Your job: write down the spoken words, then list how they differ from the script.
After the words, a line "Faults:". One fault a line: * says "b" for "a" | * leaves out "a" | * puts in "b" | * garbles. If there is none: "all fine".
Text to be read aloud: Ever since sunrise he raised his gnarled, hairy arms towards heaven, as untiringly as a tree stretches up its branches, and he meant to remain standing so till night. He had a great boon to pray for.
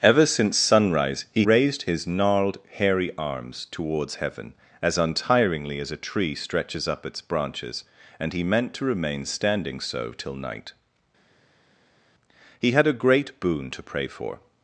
Ever since sunrise he raised his gnarled, hairy arms towards heaven, as untiringly as a tree stretches up its branches, and he meant to remain standing so till night. He had a great boon to pray for.
Faults:
all fine